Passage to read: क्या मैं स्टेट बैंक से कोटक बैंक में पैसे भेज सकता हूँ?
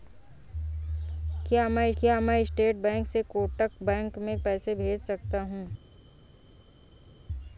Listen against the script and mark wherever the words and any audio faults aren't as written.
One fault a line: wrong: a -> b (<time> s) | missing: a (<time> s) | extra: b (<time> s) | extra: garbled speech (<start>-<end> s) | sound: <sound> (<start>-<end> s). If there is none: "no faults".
extra: क्या मैं (2.0 s)